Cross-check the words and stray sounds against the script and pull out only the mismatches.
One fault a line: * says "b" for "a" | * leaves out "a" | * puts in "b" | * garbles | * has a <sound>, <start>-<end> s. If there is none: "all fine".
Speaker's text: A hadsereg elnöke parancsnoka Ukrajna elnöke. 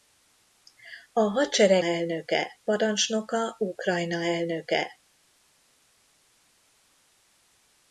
all fine